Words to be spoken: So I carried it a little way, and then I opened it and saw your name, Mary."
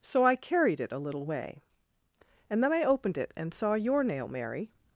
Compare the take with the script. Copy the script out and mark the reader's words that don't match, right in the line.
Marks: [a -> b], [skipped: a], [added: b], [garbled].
So I carried it a little way, and then I opened it and saw your [name, -> nail] Mary."